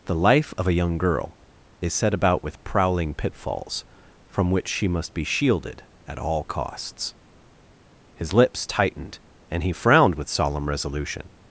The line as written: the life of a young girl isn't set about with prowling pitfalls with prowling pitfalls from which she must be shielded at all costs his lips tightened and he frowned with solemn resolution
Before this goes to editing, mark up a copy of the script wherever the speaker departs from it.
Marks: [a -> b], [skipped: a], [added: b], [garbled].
the life of a young girl [isn't -> is] set about with prowling pitfalls [skipped: with prowling pitfalls] from which she must be shielded at all costs his lips tightened and he frowned with solemn resolution